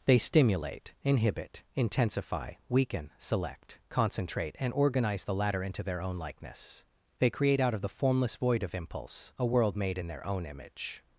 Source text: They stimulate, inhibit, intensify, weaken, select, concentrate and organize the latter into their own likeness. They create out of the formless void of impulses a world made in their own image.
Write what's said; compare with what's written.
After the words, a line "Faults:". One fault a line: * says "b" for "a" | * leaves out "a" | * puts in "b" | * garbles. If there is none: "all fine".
They stimulate, inhibit, intensify, weaken, select, concentrate and organize the latter into their own likeness. They create out of the formless void of impulse a world made in their own image.
Faults:
* says "impulse" for "impulses"